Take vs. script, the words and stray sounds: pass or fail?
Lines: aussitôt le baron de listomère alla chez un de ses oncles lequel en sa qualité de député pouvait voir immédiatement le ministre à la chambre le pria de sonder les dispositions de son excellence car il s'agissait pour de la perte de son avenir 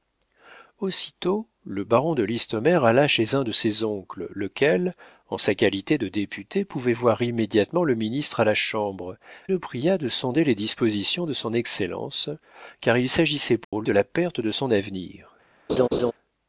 fail